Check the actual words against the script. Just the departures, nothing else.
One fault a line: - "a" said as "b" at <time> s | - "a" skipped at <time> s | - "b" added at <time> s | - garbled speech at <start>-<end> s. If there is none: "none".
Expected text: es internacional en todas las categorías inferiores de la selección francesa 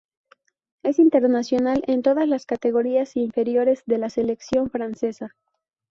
none